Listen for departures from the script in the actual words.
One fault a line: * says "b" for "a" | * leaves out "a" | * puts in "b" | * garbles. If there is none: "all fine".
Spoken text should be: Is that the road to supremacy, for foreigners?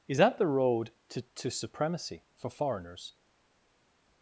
* puts in "to"